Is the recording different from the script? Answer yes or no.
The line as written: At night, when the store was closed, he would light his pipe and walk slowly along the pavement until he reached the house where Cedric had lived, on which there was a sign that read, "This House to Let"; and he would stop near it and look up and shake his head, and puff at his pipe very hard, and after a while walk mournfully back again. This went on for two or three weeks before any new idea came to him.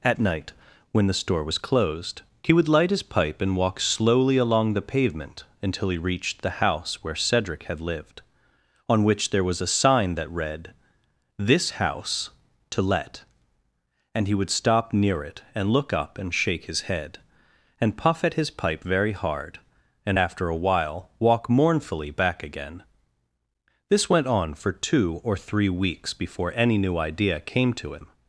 no